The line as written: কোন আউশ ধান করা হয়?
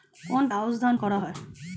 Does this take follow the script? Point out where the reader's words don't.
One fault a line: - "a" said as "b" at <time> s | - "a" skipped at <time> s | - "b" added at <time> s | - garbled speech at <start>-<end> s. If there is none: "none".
none